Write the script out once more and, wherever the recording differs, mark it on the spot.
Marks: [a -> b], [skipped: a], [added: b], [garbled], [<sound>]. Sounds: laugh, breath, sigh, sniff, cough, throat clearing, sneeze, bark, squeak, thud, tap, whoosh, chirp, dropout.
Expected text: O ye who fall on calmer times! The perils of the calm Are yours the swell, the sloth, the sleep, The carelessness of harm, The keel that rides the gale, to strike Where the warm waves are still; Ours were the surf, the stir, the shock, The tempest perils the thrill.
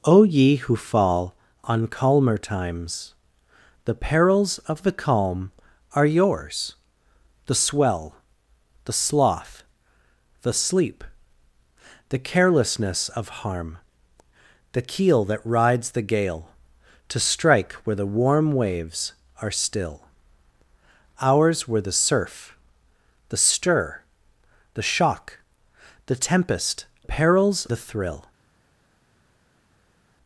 O ye who fall on calmer times! The perils of the calm Are yours the swell, the sloth, the sleep, The carelessness of harm, The keel that rides the gale, to strike Where the warm waves are still; Ours were the surf, the stir, the shock, The tempest perils the thrill.